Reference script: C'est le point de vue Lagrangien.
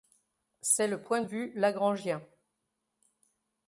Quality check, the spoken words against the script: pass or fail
pass